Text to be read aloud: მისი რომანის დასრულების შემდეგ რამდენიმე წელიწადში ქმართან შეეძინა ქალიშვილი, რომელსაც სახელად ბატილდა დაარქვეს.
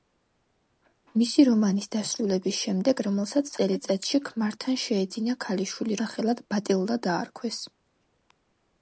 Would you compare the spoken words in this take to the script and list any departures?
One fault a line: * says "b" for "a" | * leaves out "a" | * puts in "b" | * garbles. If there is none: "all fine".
* says "რომელსაც" for "რამდენიმე"
* leaves out "რომელსაც"